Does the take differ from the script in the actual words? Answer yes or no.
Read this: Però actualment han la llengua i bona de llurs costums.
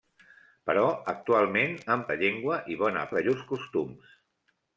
no